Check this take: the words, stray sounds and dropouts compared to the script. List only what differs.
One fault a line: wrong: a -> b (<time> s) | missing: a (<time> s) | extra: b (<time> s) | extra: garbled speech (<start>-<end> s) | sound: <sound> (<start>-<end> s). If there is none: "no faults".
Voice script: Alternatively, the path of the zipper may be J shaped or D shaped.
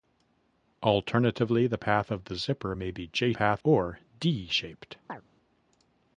wrong: shaped -> path (3.3 s)
sound: chirp (5.1-5.2 s)